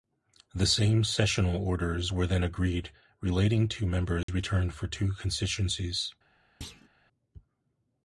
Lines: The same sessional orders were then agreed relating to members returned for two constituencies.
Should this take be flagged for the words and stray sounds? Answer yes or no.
yes